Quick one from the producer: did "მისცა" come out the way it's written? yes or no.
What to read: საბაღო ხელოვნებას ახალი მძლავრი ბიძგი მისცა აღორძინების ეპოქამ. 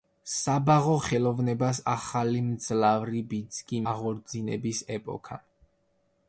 no